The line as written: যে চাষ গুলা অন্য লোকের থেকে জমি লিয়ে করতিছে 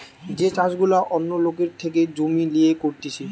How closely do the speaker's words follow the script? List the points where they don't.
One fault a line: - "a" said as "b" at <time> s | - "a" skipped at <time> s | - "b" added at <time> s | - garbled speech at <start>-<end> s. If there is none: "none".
none